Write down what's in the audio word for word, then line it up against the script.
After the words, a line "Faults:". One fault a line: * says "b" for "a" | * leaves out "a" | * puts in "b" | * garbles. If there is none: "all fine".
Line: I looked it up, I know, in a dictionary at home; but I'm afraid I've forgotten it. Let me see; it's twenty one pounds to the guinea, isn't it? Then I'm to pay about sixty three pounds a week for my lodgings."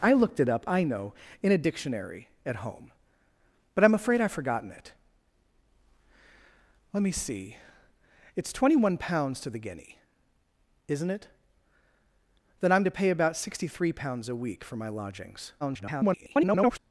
I looked it up, I know, in a dictionary at home; but I'm afraid I've forgotten it. Let me see; it's twenty one pounds to the guinea, isn't it? Then I'm to pay about sixty three pounds a week for my lodgings." [garbled]
Faults:
* garbles